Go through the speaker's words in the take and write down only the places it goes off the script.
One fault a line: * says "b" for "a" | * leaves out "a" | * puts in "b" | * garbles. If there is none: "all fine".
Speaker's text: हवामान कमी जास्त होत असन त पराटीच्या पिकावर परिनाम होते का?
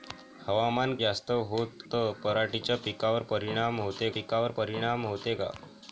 * leaves out "कमी"
* leaves out "असन"
* puts in "पिकावर परिनाम होते"